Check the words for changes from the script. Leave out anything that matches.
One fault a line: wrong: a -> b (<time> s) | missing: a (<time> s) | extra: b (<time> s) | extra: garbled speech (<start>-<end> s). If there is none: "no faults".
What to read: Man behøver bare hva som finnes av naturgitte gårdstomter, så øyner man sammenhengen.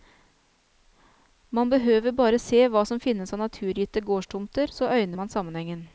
extra: se (2.4 s)